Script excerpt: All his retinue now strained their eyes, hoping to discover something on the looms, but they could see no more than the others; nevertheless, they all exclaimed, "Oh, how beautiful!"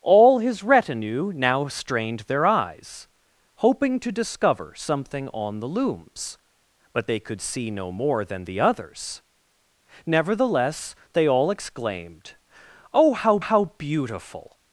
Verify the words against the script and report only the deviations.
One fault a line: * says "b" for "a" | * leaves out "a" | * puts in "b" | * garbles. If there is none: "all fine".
* puts in "how"